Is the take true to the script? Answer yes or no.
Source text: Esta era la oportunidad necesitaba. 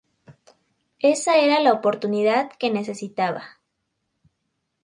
no